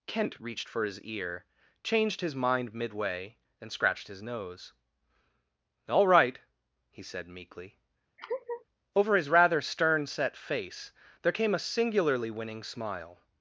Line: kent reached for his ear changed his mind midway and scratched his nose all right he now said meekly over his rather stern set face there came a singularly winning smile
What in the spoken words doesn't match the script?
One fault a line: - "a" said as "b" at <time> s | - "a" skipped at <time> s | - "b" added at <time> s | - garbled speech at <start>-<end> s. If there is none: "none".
- "now" skipped at 7.0 s